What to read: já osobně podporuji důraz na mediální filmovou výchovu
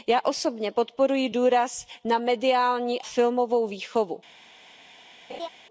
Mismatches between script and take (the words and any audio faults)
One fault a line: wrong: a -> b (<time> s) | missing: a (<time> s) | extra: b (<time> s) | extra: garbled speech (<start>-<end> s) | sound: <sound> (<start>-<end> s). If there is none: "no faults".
sound: laugh (5.3-5.5 s)